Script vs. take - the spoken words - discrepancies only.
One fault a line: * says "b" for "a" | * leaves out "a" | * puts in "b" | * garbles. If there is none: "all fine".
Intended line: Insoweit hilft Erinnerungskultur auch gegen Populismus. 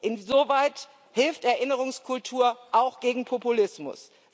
all fine